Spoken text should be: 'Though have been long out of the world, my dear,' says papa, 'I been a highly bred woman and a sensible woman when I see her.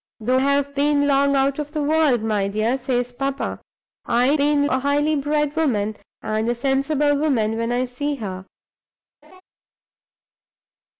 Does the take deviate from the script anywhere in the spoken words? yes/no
no